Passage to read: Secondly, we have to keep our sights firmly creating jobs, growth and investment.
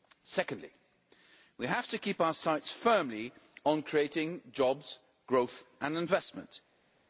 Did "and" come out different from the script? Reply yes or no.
no